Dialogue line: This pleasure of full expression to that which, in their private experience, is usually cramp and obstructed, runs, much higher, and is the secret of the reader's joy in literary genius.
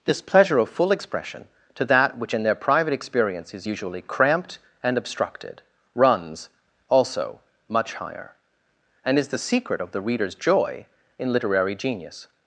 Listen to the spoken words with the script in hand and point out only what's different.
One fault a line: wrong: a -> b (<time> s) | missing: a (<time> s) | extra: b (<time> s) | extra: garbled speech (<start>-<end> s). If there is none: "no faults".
wrong: cramp -> cramped (4.0 s)
extra: also (6.9 s)